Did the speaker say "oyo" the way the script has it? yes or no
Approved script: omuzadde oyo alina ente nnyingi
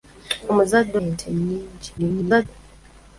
no